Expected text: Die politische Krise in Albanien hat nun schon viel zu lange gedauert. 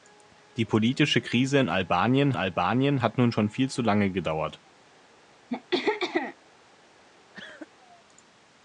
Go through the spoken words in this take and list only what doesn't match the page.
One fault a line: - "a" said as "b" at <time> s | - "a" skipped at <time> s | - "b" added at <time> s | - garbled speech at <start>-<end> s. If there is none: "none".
- "Albanien" added at 2.4 s